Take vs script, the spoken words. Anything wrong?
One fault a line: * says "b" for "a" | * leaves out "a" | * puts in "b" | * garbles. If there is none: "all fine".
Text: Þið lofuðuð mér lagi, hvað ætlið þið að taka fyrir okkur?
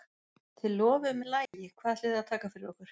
all fine